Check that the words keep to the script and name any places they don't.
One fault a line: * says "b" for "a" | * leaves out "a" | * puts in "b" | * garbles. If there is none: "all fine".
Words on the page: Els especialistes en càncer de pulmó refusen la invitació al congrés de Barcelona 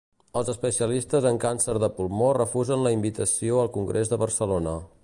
all fine